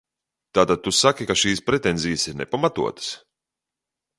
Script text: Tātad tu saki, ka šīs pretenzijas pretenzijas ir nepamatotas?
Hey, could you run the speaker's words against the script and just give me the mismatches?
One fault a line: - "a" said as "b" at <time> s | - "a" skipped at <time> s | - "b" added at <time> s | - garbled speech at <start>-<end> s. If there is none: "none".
- "pretenzijas" skipped at 2.3 s